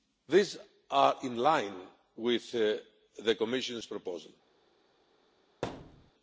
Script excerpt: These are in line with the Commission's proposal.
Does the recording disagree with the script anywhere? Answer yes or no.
no